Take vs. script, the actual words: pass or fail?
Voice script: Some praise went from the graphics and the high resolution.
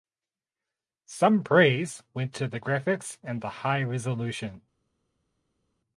fail